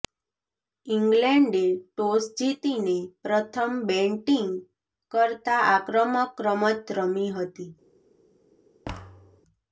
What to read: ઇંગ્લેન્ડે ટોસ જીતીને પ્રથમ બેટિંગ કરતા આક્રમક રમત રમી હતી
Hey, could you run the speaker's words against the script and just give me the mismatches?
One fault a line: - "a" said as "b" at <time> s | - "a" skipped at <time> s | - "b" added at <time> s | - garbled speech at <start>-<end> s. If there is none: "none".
none